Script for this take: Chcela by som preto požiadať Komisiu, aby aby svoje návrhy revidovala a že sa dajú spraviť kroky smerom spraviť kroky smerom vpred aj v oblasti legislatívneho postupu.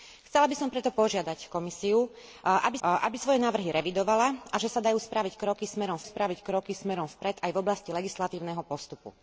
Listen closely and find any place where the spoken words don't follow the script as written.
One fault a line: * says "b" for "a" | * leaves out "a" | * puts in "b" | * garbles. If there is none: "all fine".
all fine